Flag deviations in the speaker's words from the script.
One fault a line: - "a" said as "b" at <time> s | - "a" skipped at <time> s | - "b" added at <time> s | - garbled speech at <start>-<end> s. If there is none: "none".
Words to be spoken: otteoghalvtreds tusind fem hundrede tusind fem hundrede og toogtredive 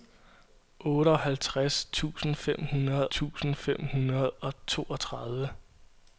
none